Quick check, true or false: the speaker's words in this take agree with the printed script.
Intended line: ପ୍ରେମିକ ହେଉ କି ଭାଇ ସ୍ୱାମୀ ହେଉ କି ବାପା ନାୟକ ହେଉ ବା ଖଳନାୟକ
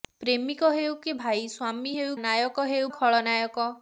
false